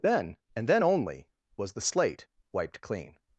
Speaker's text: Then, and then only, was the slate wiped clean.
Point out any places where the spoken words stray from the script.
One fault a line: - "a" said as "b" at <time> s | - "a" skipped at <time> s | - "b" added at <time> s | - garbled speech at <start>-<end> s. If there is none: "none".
none